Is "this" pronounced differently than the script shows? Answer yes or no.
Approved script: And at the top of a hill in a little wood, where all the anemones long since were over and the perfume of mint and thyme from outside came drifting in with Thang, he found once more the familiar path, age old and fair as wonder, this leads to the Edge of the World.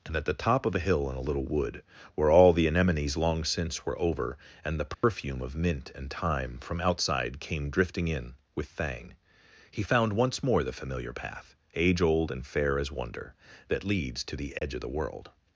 yes